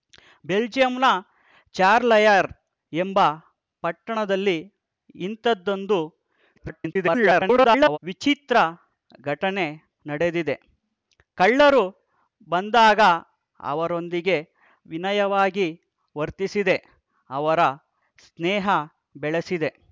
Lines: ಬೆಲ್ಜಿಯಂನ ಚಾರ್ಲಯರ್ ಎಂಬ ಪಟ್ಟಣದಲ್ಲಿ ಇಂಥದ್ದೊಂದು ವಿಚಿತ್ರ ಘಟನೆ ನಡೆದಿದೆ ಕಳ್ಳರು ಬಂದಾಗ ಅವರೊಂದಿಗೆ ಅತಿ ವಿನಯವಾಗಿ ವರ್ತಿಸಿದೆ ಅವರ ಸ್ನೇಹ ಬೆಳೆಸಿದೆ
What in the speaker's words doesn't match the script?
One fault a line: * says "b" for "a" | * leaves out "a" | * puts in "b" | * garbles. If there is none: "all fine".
* garbles
* leaves out "ಅತಿ"